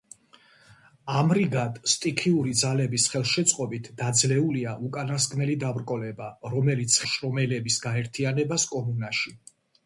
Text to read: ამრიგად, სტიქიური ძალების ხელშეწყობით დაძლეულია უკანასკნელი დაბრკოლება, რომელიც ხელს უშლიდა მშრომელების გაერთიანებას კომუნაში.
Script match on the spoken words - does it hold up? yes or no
no